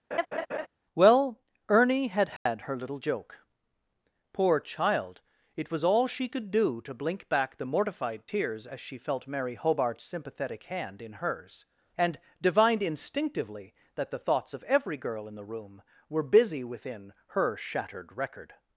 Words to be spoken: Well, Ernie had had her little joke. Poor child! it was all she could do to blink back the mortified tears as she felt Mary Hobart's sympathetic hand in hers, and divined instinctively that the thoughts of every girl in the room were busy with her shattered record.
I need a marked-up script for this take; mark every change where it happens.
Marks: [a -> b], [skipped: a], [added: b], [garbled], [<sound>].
[laugh] Well, Ernie had had [dropout] her little joke. Poor child! it was all she could do to blink back the mortified tears as she felt Mary Hobart's sympathetic hand in hers, and divined instinctively that the thoughts of every girl in the room were busy [with -> within] her shattered record.